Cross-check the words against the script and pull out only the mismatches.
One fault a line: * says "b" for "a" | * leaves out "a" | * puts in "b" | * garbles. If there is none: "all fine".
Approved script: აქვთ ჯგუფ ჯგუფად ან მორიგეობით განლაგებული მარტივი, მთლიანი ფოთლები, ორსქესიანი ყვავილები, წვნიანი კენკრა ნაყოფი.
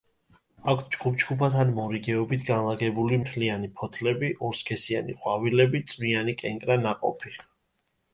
* leaves out "მარტივი"